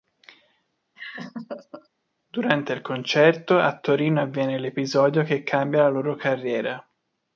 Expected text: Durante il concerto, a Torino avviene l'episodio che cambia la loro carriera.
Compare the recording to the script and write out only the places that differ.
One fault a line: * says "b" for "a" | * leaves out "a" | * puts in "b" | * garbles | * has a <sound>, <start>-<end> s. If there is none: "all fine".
* has a laugh, 1.0-1.9 s